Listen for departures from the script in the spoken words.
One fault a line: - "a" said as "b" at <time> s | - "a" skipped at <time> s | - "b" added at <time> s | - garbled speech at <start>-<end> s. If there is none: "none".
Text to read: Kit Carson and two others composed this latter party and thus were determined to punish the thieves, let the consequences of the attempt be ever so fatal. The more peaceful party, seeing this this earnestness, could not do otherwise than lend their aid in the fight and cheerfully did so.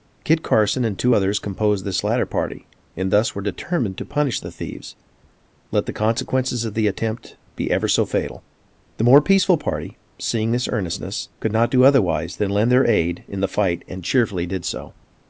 - "this" skipped at 10.7 s